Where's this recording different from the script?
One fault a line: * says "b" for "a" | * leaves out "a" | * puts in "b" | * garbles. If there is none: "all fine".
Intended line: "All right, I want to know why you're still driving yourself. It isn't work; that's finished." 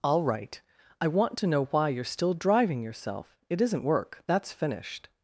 all fine